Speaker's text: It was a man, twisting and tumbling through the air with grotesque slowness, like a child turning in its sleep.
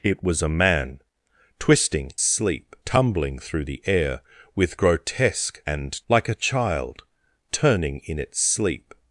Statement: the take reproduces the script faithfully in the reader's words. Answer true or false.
false